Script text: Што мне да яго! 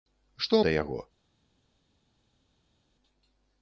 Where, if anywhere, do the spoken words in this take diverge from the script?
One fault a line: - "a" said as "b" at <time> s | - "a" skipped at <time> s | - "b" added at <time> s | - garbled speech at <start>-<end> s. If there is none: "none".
- "мне" skipped at 0.6 s